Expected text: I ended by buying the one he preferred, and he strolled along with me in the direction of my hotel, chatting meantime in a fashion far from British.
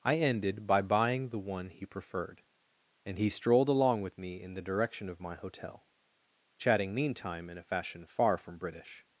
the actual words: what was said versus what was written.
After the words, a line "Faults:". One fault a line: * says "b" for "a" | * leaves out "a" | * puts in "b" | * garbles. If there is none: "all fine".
I ended by buying the one he preferred, and he strolled along with me in the direction of my hotel, chatting meantime in a fashion far from British.
Faults:
all fine